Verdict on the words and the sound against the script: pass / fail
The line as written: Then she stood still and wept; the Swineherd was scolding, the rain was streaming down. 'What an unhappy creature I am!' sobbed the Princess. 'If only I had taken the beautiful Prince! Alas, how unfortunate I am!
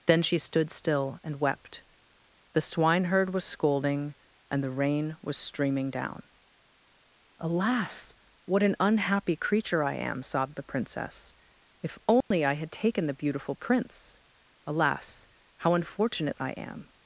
fail